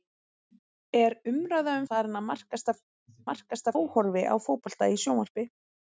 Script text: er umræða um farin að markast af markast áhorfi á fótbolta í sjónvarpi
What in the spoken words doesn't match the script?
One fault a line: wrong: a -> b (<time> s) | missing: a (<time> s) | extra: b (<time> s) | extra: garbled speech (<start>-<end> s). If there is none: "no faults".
no faults